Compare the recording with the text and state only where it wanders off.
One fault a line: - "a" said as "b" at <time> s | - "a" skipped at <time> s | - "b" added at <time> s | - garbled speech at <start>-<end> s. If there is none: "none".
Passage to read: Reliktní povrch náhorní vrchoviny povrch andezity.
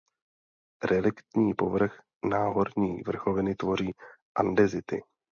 - "povrch" said as "tvoří" at 3.5 s